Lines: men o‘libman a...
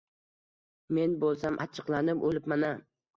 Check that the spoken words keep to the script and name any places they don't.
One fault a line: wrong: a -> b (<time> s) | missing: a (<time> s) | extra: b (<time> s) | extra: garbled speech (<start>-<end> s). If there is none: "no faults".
extra: bo‘lsam achchiqlanib (1.2 s)